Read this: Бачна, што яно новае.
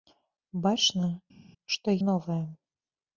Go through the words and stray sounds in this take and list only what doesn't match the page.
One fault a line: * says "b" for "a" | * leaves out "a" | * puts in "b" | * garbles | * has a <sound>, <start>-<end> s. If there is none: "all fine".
* leaves out "яно"